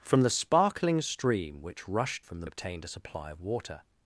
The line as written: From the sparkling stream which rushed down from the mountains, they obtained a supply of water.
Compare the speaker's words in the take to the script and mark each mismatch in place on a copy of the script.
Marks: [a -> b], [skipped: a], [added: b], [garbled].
From the sparkling stream which rushed [skipped: down] from the [skipped: mountains, they] obtained a supply of water.